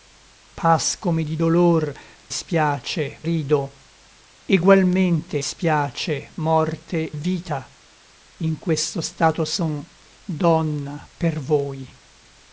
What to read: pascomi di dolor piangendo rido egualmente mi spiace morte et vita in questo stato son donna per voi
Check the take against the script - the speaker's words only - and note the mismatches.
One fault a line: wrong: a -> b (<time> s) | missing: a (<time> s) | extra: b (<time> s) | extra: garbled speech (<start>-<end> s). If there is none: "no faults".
wrong: piangendo -> spiace (2.3 s)
missing: mi (5.4 s)
missing: et (7.1 s)